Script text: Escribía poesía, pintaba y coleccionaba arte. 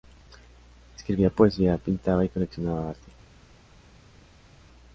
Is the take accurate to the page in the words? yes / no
yes